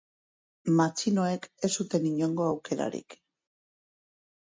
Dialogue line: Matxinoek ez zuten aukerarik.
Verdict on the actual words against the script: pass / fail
fail